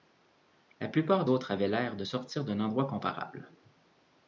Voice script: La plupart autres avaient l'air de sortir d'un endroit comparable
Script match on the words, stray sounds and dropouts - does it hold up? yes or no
yes